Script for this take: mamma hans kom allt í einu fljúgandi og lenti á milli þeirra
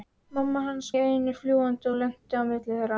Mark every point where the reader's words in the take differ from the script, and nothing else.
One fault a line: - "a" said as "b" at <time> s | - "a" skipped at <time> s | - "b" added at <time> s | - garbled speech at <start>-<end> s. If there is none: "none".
- "kom allt" skipped at 0.9 s